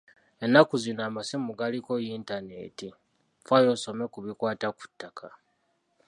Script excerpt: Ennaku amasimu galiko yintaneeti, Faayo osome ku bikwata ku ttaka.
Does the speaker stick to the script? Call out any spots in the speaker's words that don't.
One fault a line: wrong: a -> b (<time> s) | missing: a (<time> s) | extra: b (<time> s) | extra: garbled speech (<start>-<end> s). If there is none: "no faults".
extra: zino (0.8 s)